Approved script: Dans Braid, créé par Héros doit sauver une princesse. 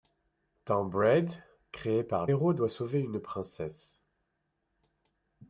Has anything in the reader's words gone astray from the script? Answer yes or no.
no